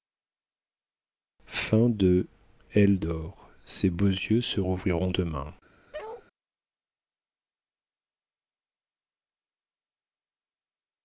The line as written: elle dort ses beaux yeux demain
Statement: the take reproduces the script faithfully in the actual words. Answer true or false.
false